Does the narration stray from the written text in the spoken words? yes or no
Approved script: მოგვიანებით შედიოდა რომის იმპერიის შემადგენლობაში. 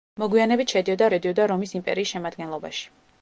yes